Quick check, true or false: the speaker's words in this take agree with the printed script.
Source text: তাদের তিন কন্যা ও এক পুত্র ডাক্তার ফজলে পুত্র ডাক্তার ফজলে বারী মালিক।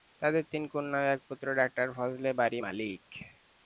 false